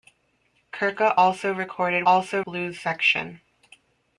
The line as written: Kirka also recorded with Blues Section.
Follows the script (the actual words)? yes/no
no